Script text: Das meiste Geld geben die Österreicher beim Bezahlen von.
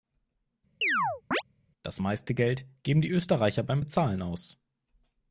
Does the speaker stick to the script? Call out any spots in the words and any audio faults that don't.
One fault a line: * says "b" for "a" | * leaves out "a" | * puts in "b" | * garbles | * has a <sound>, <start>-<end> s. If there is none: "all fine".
* has a chirp, 0.8-1.4 s
* says "aus" for "von"